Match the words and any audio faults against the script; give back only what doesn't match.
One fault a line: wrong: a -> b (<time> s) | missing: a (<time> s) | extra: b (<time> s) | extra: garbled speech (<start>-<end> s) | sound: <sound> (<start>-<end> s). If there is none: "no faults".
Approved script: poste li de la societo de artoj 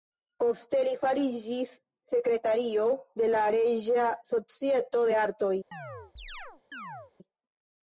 extra: fariĝis sekretario (1.0 s)
extra: reĝa (3.6 s)
sound: chirp (5.7-7.1 s)